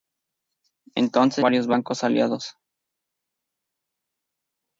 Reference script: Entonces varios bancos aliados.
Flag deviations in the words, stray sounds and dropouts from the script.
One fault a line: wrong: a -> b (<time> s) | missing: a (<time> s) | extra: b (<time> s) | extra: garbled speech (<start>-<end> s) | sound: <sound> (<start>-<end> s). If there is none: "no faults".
no faults